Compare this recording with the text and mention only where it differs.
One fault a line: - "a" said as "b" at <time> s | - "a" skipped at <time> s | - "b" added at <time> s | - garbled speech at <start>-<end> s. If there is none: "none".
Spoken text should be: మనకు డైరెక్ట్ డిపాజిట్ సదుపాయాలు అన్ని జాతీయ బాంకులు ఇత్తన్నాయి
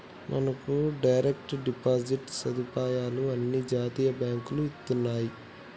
none